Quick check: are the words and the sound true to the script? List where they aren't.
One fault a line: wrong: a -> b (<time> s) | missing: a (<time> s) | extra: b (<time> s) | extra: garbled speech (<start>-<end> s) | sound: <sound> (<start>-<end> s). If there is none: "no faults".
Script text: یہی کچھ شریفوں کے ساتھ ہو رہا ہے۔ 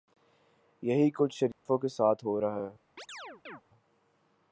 sound: dropout (1.5-1.7 s)
sound: chirp (3.0-3.6 s)